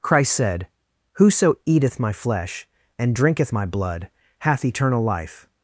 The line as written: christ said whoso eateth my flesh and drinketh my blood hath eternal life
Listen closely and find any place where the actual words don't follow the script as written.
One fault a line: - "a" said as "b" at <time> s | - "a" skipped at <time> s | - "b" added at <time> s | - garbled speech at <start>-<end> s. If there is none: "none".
none